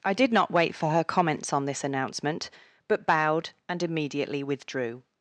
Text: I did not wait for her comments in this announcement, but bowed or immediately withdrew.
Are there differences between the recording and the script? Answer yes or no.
yes